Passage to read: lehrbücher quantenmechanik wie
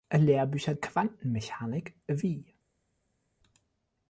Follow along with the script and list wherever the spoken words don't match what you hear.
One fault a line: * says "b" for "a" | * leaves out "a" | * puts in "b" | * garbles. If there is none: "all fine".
all fine